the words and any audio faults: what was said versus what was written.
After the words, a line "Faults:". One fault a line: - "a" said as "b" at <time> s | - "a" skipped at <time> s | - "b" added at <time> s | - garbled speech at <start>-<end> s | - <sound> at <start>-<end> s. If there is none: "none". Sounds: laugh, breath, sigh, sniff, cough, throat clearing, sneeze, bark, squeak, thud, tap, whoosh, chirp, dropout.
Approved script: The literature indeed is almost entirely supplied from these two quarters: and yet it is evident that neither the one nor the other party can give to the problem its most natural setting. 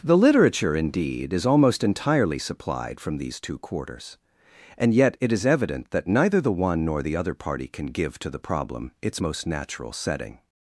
The literature indeed is almost entirely supplied from these two quarters: and yet it is evident that neither the one nor the other party can give to the problem its most natural setting.
Faults:
none